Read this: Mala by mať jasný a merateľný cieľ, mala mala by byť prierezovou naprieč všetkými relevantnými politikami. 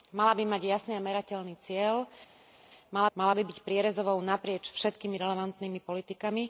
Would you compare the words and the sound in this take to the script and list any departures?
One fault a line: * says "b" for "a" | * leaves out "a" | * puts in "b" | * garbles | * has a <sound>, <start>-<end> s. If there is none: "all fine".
all fine